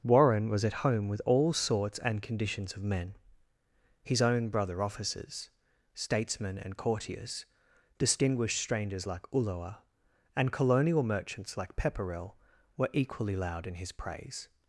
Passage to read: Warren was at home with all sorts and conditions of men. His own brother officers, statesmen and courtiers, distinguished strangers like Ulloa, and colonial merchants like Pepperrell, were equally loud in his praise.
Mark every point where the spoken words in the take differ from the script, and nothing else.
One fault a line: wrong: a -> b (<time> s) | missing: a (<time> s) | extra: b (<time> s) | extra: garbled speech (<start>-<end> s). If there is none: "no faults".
no faults